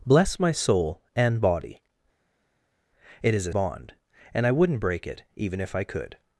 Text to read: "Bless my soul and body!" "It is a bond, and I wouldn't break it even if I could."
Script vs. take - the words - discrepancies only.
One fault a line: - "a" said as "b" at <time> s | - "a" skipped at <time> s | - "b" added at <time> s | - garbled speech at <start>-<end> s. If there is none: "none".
none